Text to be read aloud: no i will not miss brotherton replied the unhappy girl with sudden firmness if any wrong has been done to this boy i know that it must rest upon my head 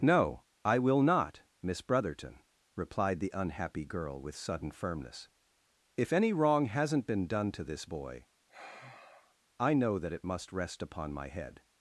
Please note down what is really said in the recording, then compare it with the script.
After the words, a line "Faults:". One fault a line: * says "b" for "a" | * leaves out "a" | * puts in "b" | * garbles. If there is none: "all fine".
no i will not miss brotherton replied the unhappy girl with sudden firmness if any wrong hasn't been done to this boy i know that it must rest upon my head
Faults:
* says "hasn't" for "has"